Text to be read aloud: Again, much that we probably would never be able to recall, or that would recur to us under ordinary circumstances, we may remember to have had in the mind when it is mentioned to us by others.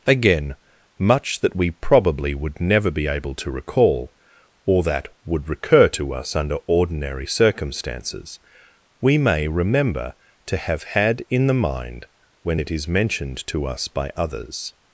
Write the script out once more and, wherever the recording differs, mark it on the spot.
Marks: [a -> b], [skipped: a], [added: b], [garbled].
Again, much that we probably would never be able to recall, or that would recur to us under ordinary circumstances, we may remember to have had in the mind when it is mentioned to us by others.